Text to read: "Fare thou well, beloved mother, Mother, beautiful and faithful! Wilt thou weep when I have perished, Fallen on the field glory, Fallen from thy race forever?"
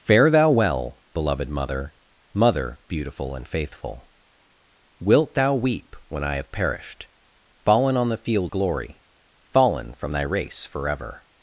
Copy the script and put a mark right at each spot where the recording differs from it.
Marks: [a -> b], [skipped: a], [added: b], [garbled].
"Fare thou well, beloved mother, Mother, beautiful and faithful! Wilt thou weep when I have perished, Fallen on the field glory, Fallen from thy race forever?"